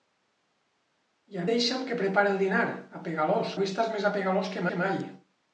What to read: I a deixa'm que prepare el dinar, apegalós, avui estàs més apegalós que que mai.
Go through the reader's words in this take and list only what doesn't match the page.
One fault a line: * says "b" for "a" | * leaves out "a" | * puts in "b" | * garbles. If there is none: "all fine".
all fine